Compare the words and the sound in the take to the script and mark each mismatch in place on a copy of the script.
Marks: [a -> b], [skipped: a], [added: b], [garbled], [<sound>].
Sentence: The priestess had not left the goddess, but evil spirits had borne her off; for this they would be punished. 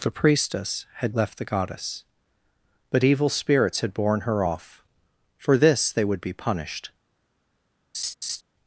The priestess had [skipped: not] left the goddess, but evil spirits had borne her off; for this they would be punished. [laugh]